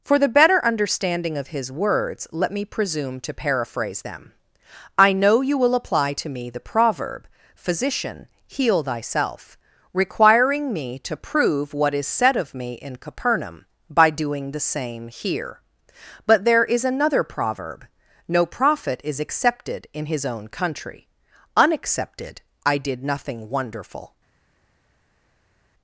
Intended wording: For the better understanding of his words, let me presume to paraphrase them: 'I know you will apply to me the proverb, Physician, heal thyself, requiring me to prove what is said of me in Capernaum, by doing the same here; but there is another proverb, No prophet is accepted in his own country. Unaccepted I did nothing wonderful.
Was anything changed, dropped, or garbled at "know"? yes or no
no